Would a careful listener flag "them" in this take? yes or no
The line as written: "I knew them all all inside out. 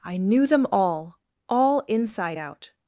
no